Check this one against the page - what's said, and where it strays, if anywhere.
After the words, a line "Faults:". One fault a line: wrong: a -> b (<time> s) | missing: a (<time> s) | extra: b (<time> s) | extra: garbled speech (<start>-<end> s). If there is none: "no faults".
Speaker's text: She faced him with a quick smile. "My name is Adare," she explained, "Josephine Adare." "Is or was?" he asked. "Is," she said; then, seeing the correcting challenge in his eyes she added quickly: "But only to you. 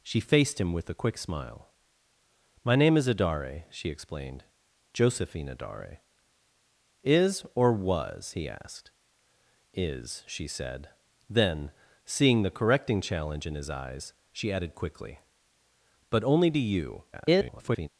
She faced him with a quick smile. "My name is Adare," she explained, "Josephine Adare." "Is or was?" he asked. "Is," she said; then, seeing the correcting challenge in his eyes she added quickly: "But only to you. [garbled]
Faults:
extra: garbled speech (17.1-17.9 s)